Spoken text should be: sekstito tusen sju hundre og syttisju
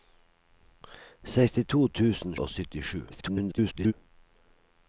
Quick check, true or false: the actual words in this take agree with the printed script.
false